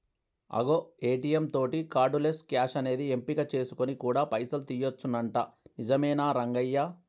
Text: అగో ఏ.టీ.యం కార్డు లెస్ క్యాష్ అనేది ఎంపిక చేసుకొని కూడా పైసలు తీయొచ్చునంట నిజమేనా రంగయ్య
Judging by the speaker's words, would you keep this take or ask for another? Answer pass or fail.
fail